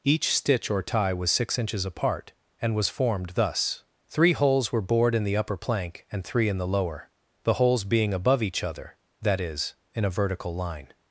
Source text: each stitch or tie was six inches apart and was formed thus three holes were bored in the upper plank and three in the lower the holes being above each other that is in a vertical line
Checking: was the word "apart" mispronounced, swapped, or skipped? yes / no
no